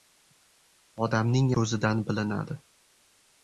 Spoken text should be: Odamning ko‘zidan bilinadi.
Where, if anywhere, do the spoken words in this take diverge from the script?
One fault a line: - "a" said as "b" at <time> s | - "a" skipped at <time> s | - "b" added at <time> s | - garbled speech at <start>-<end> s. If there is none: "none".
none